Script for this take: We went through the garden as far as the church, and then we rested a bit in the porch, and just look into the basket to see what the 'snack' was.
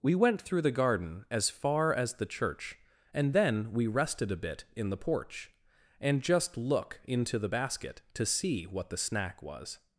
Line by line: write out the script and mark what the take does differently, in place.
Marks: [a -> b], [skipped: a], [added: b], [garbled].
We went through the garden as far as the church, and then we rested a bit in the porch, and just look into the basket to see what the 'snack' was.